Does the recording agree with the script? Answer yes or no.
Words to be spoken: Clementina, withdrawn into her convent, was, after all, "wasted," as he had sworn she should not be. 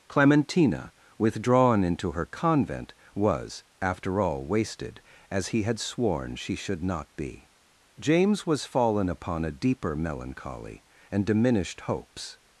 no